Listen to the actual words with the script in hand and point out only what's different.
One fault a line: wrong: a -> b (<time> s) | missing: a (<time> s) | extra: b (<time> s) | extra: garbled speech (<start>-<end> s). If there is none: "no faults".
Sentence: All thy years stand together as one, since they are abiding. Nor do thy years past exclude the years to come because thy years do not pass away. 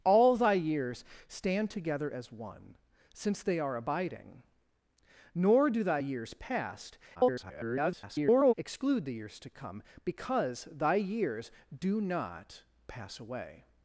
extra: garbled speech (7.1-8.5 s)